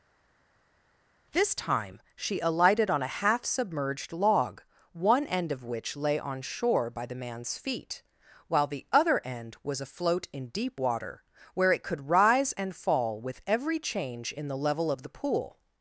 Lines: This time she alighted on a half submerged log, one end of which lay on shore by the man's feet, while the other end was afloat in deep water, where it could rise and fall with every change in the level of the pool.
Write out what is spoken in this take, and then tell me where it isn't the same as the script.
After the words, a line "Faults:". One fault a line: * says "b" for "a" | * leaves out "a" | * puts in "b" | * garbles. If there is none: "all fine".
This time she alighted on a half submerged log, one end of which lay on shore by the man's feet, while the other end was afloat in deep water, where it could rise and fall with every change in the level of the pool.
Faults:
all fine